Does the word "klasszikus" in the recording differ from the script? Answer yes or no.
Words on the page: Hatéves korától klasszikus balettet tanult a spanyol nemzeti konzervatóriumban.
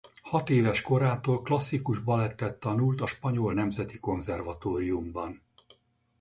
no